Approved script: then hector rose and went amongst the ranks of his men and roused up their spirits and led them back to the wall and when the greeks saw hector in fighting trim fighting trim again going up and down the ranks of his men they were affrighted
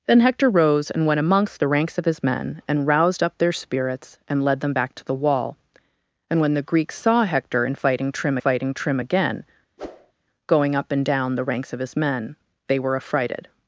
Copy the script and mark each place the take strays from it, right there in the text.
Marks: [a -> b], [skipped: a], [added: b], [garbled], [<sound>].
then hector rose and went amongst the ranks of his men and roused up their spirits and led them back to the wall and when the greeks saw hector in fighting trim fighting trim again [whoosh] going up and down the ranks of his men they were affrighted